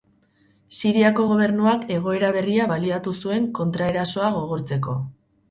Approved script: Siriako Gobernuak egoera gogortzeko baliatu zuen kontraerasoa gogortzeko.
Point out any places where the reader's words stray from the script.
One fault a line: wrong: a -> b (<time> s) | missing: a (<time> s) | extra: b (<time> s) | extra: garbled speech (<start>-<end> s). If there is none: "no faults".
wrong: gogortzeko -> berria (2.4 s)